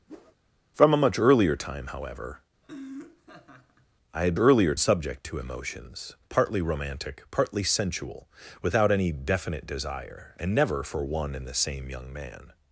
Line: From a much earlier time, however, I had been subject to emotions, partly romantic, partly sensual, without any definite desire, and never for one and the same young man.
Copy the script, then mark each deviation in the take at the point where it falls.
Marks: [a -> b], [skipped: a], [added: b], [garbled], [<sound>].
[whoosh] From a much earlier time, however, [laugh] I had [been -> earlier] subject to emotions, partly romantic, partly sensual, without any definite desire, and never for one and the same young man.